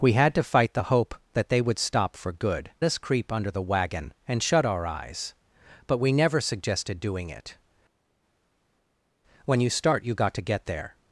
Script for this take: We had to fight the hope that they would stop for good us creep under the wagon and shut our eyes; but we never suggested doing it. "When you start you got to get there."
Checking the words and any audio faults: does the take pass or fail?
pass